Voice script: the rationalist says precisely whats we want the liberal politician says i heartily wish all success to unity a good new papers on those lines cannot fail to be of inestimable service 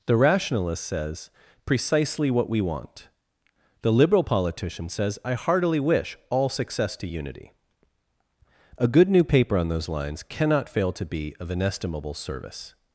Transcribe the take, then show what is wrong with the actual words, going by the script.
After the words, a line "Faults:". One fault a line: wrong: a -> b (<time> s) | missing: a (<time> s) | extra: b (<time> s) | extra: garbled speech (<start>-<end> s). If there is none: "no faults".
the rationalist says precisely what we want the liberal politician says i heartily wish all success to unity a good new paper on those lines cannot fail to be of inestimable service
Faults:
wrong: whats -> what (2.3 s)
wrong: papers -> paper (9.2 s)